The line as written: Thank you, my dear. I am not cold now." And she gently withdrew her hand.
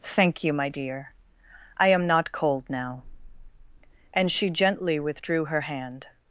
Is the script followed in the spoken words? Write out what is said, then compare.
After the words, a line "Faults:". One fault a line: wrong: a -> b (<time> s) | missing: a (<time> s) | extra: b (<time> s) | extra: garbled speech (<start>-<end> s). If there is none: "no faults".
Thank you, my dear. I am not cold now." And she gently withdrew her hand.
Faults:
no faults